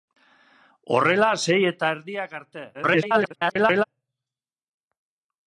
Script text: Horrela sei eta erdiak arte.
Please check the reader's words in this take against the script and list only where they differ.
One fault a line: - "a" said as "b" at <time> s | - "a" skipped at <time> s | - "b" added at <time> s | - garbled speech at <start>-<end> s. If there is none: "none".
- garbled speech at 2.7-3.8 s